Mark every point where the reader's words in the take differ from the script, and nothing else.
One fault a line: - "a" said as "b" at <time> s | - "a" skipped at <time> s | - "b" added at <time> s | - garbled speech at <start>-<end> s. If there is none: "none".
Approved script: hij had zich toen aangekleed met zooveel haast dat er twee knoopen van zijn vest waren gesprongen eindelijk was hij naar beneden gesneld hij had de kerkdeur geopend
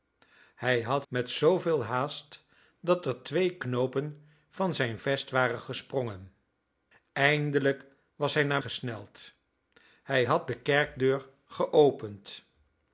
- "zich toen aangekleed" skipped at 1.1 s
- "beneden" skipped at 8.6 s